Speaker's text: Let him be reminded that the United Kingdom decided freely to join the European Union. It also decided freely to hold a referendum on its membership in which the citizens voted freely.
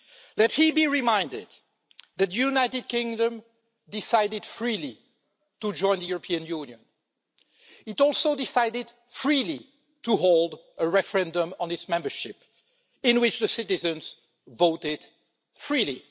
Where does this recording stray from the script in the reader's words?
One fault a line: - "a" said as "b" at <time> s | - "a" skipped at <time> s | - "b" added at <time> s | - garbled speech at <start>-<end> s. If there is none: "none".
none